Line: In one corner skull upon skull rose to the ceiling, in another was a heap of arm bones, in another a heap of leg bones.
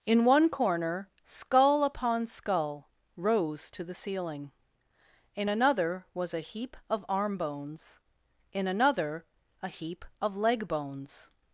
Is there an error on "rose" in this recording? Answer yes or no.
no